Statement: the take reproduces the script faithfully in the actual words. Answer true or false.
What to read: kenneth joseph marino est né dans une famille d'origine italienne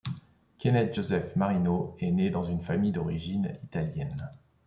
true